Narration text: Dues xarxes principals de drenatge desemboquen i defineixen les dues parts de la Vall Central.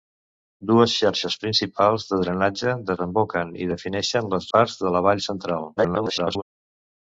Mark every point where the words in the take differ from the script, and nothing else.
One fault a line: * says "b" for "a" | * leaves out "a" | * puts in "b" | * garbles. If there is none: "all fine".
* leaves out "dues"
* garbles